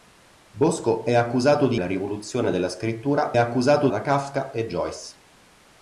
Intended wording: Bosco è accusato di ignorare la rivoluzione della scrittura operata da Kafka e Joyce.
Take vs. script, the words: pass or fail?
fail